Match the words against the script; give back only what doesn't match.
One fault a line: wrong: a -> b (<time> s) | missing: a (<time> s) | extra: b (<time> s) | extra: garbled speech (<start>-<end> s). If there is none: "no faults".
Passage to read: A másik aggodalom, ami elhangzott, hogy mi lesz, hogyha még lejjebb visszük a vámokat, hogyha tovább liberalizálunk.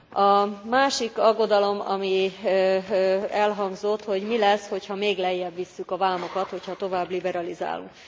no faults